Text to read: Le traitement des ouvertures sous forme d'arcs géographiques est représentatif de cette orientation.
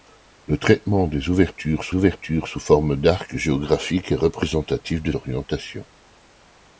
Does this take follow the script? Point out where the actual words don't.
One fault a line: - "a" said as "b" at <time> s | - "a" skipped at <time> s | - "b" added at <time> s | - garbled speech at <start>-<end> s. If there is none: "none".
- "ouvertures sous" added at 1.9 s
- "cette" skipped at 5.1 s